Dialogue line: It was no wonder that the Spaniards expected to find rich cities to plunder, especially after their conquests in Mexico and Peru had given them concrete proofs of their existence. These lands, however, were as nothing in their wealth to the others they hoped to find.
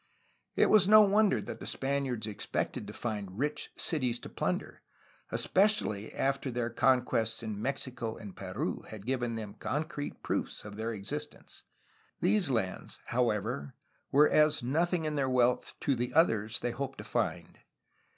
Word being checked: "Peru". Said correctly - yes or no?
yes